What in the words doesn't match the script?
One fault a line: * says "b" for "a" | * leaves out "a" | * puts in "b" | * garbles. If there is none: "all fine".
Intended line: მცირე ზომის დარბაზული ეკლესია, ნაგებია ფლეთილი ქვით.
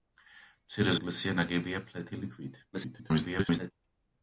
* leaves out "ზომის დარბაზული"
* garbles